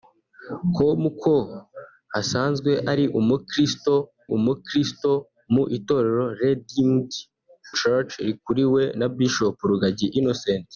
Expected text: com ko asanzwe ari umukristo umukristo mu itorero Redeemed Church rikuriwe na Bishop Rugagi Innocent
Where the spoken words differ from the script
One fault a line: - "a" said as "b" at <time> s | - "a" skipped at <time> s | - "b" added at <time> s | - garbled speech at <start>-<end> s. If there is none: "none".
none